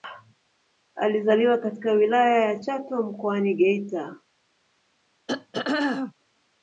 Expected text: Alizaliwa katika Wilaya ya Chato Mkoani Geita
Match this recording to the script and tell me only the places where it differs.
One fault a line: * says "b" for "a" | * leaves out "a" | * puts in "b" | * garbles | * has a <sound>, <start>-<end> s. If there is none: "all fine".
* has a throat clearing, 5.3-6.1 s